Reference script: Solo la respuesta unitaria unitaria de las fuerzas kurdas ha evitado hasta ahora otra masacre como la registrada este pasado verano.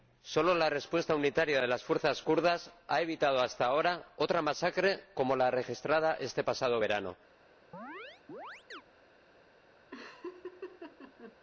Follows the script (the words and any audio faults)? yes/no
no